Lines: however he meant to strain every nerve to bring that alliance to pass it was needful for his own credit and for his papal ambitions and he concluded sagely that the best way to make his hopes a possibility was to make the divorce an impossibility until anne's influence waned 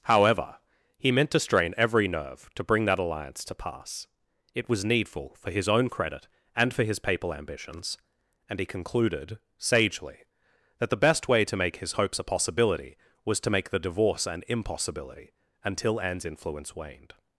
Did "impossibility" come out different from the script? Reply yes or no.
no